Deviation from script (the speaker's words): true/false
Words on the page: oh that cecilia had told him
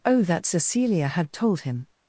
false